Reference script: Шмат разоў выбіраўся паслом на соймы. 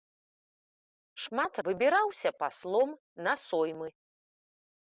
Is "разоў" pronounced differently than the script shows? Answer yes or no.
yes